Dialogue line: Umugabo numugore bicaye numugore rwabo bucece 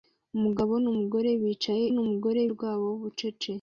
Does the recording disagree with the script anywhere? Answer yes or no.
no